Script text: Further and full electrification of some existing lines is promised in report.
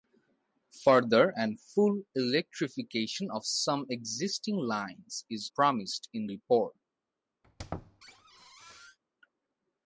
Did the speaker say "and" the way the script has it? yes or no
yes